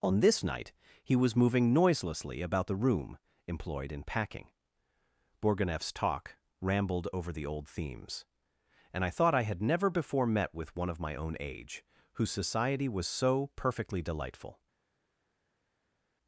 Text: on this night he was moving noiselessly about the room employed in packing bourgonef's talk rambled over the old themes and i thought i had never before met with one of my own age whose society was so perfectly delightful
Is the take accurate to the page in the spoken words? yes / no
yes